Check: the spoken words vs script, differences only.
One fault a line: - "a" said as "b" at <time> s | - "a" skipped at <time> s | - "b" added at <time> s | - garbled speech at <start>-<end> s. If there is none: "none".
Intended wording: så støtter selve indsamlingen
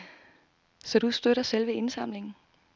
- "du" added at 1.0 s